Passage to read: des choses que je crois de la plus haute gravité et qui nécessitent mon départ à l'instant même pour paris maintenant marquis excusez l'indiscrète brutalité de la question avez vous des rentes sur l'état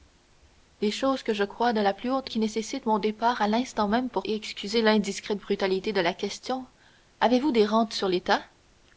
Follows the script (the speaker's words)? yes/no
no